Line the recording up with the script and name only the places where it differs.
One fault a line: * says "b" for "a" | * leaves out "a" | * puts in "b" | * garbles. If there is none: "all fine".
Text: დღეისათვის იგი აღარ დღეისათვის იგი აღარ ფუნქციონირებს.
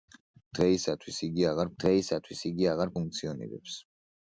all fine